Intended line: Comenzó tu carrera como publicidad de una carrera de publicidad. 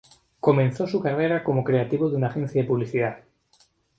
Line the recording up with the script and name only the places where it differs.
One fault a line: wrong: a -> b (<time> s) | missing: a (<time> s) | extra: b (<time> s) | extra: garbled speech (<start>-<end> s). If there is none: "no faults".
wrong: tu -> su (0.9 s)
wrong: publicidad -> creativo (1.6 s)
wrong: carrera -> agencia (2.3 s)